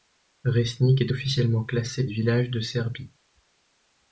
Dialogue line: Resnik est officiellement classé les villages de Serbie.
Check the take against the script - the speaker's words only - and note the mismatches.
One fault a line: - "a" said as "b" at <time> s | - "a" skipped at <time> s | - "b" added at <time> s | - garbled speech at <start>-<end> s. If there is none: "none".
none